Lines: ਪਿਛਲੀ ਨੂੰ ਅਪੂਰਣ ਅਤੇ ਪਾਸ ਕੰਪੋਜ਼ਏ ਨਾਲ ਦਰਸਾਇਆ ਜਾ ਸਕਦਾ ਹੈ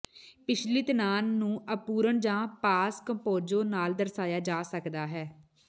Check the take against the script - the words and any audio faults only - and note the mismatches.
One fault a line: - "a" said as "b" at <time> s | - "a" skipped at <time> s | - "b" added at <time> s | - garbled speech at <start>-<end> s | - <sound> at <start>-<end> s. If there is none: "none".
- "ਤਣਾਅ" added at 0.8 s
- "ਅਤੇ" said as "ਜਾਂ" at 2.2 s